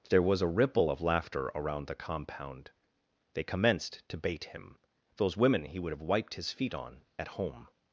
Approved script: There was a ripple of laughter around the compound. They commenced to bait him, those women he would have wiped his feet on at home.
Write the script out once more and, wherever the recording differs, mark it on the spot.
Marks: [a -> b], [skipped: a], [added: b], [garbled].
There was a ripple of laughter around the compound. They commenced to bait him, those women he would have wiped his feet on at home.